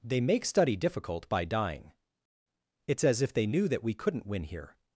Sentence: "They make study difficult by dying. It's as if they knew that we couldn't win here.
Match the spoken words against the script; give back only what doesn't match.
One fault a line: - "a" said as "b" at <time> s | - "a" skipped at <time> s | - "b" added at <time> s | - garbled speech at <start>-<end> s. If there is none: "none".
none